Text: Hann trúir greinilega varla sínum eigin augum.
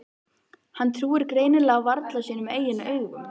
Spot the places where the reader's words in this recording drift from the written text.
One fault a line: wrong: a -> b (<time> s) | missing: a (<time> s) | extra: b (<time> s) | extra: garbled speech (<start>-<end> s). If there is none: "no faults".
no faults